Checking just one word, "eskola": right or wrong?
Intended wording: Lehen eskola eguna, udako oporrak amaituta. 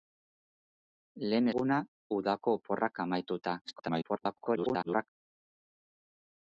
wrong